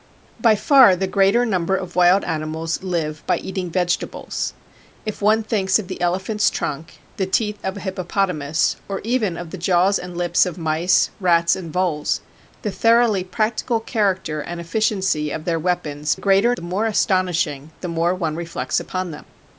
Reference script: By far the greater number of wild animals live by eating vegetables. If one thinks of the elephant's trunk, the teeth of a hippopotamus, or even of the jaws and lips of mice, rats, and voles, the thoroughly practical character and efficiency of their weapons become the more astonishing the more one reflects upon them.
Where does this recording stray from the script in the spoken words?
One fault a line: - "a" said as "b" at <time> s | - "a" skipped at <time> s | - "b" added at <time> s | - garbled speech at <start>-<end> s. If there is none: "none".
- "become" said as "greater" at 16.1 s